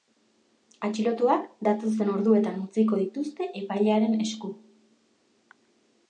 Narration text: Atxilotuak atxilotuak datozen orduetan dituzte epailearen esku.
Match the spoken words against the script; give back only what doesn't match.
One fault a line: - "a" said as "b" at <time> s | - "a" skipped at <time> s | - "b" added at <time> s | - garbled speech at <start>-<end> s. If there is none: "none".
- "atxilotuak" skipped at 1.4 s
- "utziko" added at 2.6 s